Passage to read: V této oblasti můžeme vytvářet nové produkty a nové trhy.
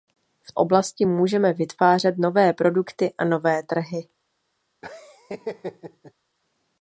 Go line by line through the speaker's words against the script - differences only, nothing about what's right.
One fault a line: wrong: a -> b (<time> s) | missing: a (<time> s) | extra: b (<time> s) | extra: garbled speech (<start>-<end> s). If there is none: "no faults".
missing: této (0.5 s)